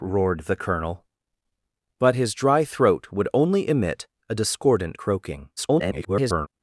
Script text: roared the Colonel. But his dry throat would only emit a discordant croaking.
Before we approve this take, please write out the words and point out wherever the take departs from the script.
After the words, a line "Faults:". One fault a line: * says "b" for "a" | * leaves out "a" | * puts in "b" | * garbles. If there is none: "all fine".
roared the Colonel. But his dry throat would only emit a discordant croaking. [garbled]
Faults:
* garbles